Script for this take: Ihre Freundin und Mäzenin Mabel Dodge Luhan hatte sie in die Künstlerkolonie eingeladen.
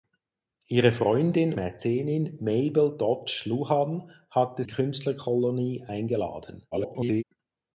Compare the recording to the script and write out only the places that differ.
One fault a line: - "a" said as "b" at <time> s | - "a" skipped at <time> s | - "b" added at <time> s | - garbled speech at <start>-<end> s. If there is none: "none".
- "und" skipped at 1.5 s
- "sie in die" skipped at 4.6 s
- garbled speech at 6.7-7.2 s